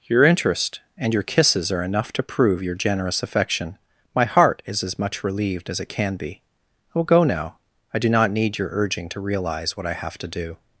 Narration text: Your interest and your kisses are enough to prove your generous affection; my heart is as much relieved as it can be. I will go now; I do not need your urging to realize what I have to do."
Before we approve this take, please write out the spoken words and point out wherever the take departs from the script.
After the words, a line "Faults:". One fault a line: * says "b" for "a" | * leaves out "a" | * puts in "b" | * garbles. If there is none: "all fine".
Your interest and your kisses are enough to prove your generous affection; my heart is as much relieved as it can be. I will go now; I do not need your urging to realize what I have to do."
Faults:
all fine